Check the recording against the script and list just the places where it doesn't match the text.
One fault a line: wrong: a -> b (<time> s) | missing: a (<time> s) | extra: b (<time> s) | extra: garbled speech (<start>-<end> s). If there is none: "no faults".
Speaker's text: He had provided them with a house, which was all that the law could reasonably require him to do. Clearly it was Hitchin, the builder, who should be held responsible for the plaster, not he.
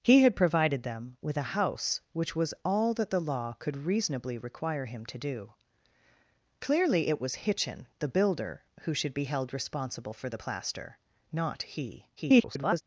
extra: garbled speech (12.2-12.8 s)